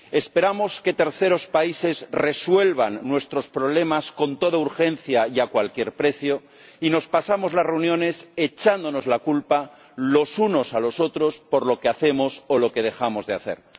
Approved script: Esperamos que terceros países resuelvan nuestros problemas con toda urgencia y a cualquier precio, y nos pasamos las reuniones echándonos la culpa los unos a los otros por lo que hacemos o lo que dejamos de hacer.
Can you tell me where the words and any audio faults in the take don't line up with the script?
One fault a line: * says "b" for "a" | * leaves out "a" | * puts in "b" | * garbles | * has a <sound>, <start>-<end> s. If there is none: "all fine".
all fine